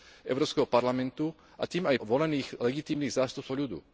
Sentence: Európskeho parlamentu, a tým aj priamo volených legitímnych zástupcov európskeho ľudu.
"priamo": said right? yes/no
no